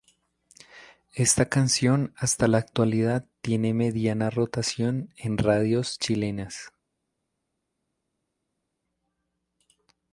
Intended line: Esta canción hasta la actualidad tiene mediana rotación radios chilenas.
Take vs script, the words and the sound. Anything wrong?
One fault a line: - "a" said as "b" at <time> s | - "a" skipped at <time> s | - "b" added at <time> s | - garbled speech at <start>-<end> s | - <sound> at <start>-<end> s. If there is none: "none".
- "en" added at 5.2 s